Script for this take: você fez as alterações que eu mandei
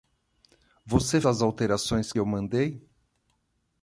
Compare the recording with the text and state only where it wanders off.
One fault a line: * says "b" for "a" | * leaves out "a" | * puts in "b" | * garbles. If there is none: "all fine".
* leaves out "fez"
* leaves out "que"